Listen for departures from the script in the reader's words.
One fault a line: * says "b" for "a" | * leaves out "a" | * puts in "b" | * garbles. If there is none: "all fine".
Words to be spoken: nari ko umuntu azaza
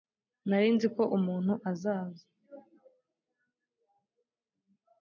* puts in "nzi"